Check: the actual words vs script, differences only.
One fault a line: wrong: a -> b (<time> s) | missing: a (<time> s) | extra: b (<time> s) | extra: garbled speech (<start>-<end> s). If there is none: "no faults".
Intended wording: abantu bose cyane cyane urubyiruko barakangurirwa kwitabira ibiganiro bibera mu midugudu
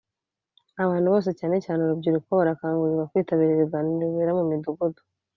no faults